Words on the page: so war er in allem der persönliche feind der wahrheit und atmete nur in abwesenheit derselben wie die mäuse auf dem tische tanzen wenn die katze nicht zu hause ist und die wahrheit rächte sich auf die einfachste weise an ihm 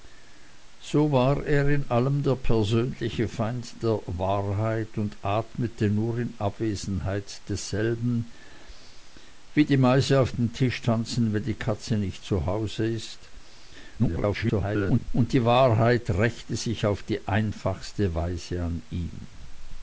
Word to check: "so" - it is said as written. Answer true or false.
true